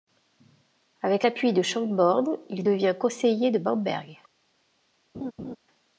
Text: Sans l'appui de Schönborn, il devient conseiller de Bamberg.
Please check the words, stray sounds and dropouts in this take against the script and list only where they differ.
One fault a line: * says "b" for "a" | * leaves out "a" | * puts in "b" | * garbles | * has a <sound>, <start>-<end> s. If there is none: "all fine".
* says "Avec" for "Sans"
* has a laugh, 5.1-5.6 s